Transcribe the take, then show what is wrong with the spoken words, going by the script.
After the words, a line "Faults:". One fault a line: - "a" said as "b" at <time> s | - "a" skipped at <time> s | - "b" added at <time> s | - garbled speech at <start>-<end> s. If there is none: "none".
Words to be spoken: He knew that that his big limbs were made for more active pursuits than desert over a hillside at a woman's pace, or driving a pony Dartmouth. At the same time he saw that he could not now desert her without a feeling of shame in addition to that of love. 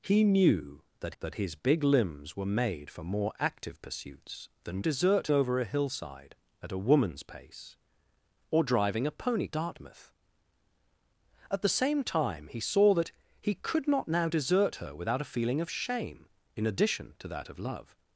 He knew that that his big limbs were made for more active pursuits than desert over a hillside at a woman's pace, or driving a pony Dartmouth. At the same time he saw that he could not now desert her without a feeling of shame in addition to that of love.
Faults:
none